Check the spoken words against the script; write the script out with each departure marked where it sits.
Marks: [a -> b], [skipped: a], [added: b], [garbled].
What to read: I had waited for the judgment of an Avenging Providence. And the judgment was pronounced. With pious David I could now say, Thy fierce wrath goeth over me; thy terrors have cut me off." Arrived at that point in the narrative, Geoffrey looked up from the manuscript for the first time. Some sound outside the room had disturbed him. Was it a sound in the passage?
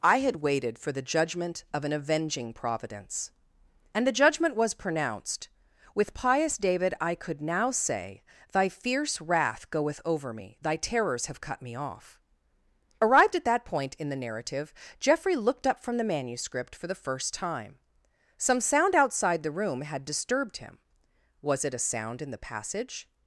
I had waited for the judgment of an Avenging Providence. And the judgment was pronounced. With pious David I could now say, Thy fierce wrath goeth over me; thy terrors have cut me off." Arrived at that point in the narrative, Geoffrey looked up from the manuscript for the first time. Some sound outside the room had disturbed him. Was it a sound in the passage?